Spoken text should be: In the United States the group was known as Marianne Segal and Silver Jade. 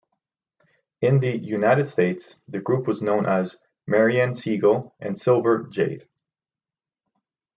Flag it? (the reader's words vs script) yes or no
no